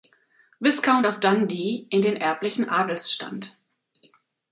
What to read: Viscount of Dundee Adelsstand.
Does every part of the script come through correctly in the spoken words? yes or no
no